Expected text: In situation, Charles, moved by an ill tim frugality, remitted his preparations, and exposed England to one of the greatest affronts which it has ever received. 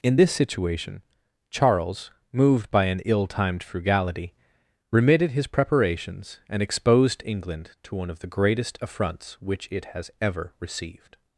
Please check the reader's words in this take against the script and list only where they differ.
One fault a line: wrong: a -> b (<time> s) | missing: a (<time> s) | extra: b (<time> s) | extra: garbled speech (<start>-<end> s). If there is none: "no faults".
extra: this (0.1 s)
wrong: tim -> timed (3.3 s)